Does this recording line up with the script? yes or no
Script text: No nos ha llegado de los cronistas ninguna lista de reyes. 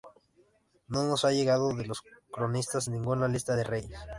yes